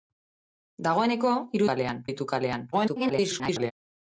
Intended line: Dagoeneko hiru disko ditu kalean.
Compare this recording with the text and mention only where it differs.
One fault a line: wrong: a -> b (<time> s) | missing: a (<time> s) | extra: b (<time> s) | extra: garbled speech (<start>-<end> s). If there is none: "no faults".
wrong: disko -> kalean (1.7 s)
extra: garbled speech (2.7-3.7 s)